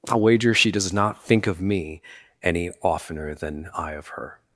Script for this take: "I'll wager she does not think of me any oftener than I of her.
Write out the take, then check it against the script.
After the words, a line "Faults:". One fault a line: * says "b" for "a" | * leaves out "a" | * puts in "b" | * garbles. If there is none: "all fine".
"I'll wager she does not think of me any oftener than I of her.
Faults:
all fine